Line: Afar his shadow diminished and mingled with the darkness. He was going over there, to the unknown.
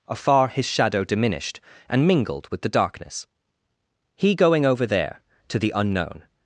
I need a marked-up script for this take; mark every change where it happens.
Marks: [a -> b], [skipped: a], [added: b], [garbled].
Afar his shadow diminished and mingled with the darkness. He [skipped: was] going over there, to the unknown.